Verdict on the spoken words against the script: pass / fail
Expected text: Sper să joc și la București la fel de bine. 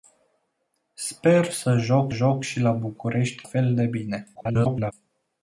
fail